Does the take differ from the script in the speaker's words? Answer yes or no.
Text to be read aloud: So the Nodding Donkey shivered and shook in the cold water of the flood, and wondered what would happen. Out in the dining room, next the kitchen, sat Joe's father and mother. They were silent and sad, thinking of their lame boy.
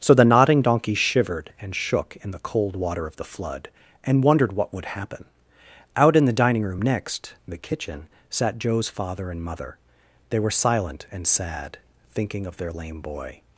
no